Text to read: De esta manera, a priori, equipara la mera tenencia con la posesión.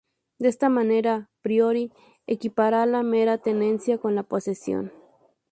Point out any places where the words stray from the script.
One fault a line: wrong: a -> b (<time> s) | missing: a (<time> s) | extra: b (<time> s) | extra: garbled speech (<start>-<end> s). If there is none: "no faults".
no faults